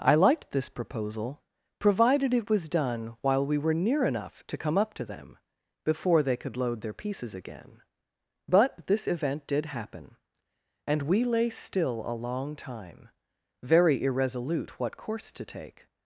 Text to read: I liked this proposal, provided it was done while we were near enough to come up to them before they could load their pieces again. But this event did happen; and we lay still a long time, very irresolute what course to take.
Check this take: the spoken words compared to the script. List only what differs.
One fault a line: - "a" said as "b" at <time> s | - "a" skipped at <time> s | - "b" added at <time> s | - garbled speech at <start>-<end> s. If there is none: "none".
none